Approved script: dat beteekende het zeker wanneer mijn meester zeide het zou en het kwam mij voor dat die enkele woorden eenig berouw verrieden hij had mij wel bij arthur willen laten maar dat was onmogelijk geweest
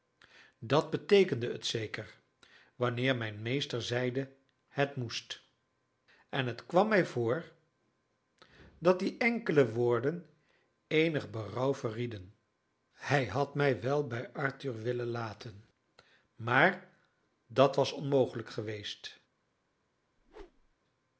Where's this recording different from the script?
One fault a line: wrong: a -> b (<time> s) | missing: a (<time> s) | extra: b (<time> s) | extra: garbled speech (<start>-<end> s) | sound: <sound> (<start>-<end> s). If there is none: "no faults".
wrong: zou -> moest (5.0 s)
sound: whoosh (20.2-20.8 s)